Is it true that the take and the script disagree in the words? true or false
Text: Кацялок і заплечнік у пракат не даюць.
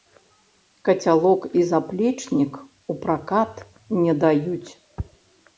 false